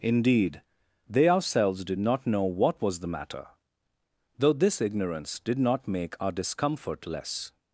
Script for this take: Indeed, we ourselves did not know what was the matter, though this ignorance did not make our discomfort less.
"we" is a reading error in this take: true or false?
true